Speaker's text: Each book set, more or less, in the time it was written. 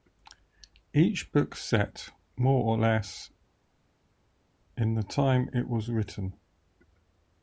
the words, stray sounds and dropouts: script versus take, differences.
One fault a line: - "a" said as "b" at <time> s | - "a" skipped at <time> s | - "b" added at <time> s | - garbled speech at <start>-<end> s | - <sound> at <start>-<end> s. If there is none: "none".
none